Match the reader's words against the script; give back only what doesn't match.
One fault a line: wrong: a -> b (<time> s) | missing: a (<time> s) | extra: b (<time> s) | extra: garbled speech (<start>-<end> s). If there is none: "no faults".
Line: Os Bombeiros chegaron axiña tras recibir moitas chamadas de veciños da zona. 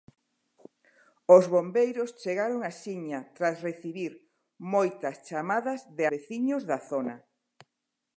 no faults